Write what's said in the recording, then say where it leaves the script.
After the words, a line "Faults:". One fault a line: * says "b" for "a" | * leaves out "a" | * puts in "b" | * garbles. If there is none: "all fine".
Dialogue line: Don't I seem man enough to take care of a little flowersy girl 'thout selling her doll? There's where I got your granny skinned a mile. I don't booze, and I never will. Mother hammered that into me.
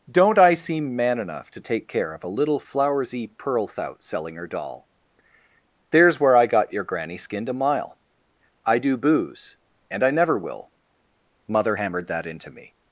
Don't I seem man enough to take care of a little flowersy pearl 'thout selling her doll? There's where I got your granny skinned a mile. I do booze, and I never will. Mother hammered that into me.
Faults:
* says "pearl" for "girl"
* says "do" for "don't"